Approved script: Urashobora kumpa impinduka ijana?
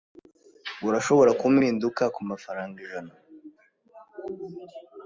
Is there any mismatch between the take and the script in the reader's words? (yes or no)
yes